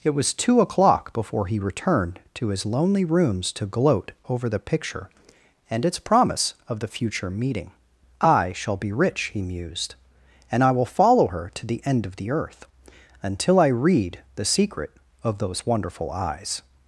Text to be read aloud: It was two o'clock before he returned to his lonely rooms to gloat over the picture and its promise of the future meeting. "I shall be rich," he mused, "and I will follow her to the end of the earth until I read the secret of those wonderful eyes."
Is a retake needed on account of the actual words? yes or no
no